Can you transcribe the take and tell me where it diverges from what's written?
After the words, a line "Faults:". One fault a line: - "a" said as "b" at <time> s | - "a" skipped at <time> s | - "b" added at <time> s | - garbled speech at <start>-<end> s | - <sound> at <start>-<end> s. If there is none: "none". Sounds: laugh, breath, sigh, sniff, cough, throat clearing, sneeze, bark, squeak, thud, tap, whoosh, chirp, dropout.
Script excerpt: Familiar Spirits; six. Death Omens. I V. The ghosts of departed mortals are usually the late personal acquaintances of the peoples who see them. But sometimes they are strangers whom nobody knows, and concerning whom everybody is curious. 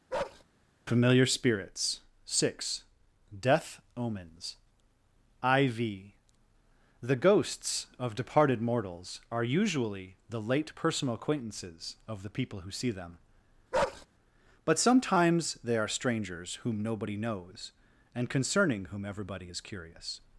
Familiar Spirits; six. Death Omens. I V. The ghosts of departed mortals are usually the late personal acquaintances of the people who see them. But sometimes they are strangers whom nobody knows, and concerning whom everybody is curious.
Faults:
- bark at 0.1-0.4 s
- "peoples" said as "people" at 12.3 s
- bark at 13.7-14.1 s